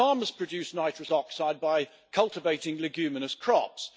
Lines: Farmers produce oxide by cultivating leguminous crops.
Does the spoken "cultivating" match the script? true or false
true